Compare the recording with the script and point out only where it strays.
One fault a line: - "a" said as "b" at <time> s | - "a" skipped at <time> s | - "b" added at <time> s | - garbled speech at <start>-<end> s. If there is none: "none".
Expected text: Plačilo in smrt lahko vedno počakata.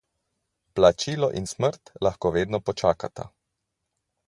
none